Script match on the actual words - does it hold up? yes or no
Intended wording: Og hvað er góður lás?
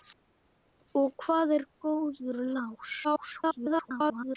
no